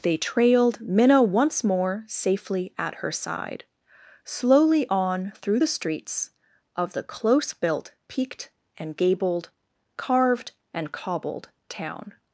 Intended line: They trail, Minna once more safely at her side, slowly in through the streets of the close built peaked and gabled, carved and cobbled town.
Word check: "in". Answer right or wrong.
wrong